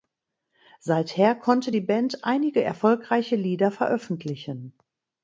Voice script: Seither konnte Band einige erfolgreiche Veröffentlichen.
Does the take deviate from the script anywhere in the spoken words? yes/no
yes